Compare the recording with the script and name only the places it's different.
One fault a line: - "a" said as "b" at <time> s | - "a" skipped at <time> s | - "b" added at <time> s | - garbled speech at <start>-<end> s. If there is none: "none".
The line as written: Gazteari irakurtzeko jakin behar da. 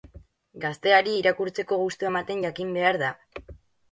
- "gustua ematen" added at 1.8 s